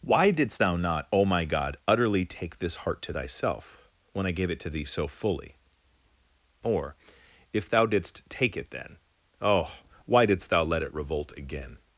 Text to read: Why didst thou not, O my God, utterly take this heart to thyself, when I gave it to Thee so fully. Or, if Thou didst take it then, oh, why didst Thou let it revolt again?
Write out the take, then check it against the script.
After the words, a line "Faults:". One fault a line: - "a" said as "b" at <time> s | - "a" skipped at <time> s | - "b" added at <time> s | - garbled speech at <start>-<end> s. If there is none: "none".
Why didst thou not, O my God, utterly take this heart to thyself, when I gave it to Thee so fully. Or, if Thou didst take it then, oh, why didst Thou let it revolt again?
Faults:
none